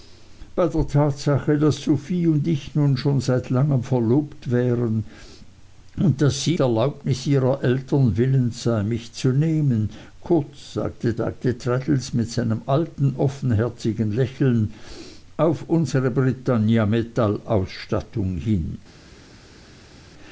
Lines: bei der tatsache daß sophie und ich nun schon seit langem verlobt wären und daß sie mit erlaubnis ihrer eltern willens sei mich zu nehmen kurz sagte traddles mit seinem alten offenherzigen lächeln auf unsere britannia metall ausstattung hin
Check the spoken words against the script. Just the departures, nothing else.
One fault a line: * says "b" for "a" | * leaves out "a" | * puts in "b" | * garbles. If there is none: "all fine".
* leaves out "mit"
* puts in "sagte"